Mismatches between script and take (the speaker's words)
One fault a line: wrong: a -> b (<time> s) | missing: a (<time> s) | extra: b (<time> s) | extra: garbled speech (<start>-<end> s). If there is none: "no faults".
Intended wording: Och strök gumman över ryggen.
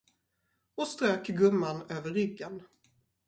no faults